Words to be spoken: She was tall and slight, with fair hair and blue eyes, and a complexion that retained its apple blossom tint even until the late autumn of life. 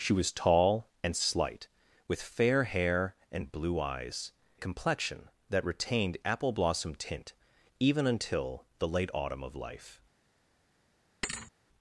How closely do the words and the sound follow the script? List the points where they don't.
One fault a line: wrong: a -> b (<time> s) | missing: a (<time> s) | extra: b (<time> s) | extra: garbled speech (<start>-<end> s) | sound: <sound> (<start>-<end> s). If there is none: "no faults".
missing: and (4.3 s)
missing: its (6.2 s)
sound: thud (11.2-11.5 s)